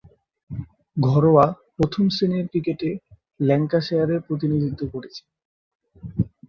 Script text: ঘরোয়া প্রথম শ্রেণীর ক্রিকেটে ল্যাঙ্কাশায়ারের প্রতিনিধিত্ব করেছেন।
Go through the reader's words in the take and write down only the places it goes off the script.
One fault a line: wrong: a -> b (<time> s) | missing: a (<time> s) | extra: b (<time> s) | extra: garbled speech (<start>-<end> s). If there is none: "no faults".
no faults